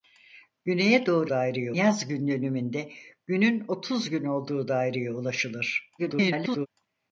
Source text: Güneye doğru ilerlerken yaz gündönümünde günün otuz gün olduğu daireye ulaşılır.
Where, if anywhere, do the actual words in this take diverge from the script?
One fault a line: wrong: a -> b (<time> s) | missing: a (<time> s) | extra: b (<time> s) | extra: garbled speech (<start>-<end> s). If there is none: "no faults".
wrong: ilerlerken -> daireye (1.3 s)
extra: garbled speech (6.0-6.7 s)